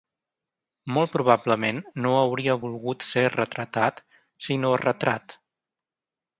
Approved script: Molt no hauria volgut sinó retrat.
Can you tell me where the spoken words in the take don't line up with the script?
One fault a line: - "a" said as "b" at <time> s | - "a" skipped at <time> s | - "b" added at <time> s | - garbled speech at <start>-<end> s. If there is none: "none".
- "probablement" added at 1.1 s
- "ser retratat" added at 3.1 s